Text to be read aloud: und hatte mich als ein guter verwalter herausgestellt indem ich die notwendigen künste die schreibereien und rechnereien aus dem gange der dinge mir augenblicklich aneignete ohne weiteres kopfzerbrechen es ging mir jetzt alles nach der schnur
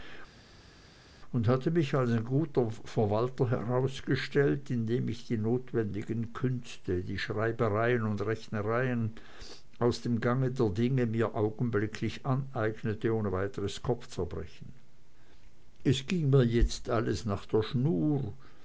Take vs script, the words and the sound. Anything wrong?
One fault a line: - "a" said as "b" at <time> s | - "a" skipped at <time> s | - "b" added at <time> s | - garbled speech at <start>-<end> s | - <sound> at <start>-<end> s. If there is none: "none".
none